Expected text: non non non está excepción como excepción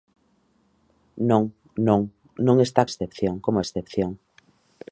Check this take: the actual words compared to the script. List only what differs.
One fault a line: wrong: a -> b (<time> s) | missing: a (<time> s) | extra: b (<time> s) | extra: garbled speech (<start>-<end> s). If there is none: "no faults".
no faults